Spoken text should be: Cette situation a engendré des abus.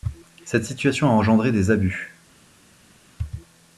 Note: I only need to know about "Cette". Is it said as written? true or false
true